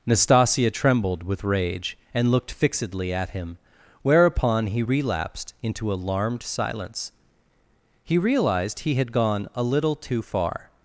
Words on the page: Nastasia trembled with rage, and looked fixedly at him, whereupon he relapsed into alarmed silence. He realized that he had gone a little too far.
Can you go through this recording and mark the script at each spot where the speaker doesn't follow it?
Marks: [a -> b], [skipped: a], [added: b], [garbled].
Nastasia trembled with rage, and looked fixedly at him, whereupon he relapsed into alarmed silence. He realized [skipped: that] he had gone a little too far.